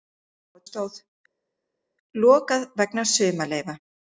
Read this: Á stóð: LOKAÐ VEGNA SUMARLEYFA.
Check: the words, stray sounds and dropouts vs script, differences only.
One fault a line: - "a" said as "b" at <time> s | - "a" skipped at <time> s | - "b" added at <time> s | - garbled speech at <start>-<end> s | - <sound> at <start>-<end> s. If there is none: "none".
none